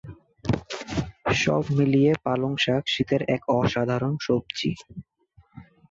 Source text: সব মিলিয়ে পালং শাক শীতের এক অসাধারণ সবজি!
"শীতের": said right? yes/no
yes